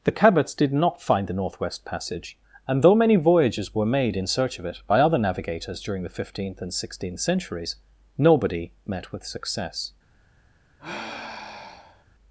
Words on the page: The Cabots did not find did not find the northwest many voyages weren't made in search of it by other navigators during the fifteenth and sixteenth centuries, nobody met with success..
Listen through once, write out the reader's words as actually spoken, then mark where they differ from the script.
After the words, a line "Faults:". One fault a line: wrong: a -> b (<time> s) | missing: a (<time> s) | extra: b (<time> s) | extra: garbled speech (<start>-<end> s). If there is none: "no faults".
The Cabots did not find the northwest passage; and though many voyages were made in search of it by other navigators during the fifteenth and sixteenth centuries, nobody met with success..
Faults:
wrong: did not find the northwest -> the northwest passage and though (1.3 s)
wrong: weren't -> were (3.8 s)